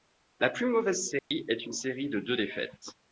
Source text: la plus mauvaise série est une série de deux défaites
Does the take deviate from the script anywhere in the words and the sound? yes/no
yes